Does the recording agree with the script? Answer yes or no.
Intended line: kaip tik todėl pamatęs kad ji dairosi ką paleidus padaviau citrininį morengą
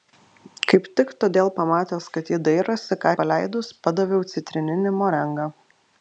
yes